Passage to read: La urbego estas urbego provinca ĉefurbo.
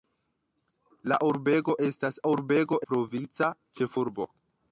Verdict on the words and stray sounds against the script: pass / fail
pass